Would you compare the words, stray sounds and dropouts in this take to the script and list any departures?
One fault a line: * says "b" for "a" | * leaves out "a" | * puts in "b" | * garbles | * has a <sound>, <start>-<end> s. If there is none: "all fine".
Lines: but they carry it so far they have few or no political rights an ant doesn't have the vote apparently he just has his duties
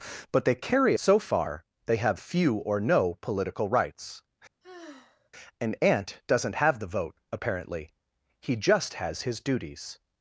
* leaves out "it"
* has a sigh, 4.6-5.3 s